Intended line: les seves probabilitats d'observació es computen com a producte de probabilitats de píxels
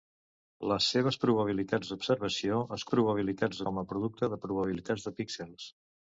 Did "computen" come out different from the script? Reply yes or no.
yes